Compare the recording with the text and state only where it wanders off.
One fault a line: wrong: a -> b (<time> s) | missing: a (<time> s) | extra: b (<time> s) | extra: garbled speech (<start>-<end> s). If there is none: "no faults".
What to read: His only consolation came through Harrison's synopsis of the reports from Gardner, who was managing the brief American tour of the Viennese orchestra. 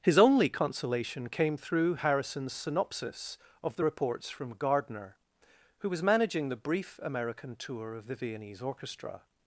no faults